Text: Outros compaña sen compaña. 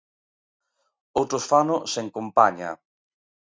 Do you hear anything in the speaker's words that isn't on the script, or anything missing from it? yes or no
yes